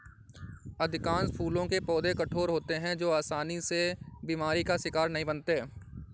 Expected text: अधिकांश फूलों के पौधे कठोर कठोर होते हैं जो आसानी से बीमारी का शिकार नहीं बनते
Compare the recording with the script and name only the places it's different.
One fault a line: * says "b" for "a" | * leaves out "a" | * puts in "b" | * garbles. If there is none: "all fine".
* leaves out "कठोर"